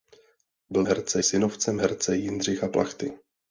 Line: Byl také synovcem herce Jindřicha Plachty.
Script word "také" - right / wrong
wrong